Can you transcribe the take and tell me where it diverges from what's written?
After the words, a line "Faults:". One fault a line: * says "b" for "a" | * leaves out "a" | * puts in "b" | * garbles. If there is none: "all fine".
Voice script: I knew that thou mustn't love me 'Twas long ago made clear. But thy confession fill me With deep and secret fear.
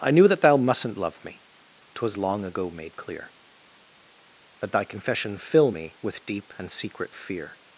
I knew that thou mustn't love me 'Twas long ago made clear. But thy confession fill me With deep and secret fear.
Faults:
all fine